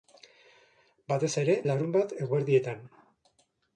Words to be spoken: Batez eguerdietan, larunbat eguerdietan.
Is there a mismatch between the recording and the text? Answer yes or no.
yes